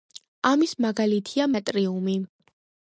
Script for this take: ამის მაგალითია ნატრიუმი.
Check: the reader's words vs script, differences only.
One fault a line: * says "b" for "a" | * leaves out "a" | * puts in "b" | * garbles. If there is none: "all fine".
all fine